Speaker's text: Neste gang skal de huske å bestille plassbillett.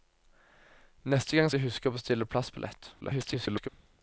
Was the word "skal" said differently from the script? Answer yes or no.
yes